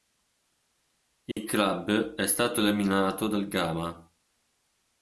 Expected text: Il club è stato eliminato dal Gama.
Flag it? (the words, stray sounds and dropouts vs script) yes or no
yes